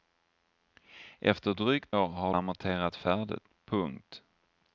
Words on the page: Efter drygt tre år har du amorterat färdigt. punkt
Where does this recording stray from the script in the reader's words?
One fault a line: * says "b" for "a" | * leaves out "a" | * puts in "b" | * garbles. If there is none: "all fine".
* leaves out "tre"
* leaves out "du"